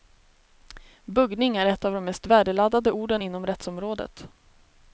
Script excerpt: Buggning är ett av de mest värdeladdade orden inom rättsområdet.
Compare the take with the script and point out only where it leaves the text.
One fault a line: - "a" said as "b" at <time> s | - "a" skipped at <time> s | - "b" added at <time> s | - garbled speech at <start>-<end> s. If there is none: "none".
none